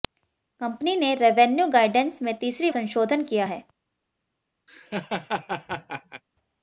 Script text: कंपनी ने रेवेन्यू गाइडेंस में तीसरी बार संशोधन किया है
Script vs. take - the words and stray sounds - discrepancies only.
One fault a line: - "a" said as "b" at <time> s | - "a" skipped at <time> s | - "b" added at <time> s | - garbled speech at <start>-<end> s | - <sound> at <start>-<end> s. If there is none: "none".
- "बार" skipped at 2.7 s
- laugh at 4.7-6.2 s